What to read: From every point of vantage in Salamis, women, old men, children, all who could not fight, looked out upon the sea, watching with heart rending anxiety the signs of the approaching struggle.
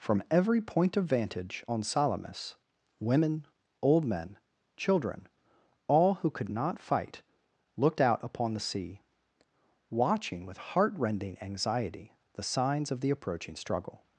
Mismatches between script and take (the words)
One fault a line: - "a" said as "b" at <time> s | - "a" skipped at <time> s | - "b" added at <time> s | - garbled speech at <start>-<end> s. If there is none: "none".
- "in" said as "on" at 1.7 s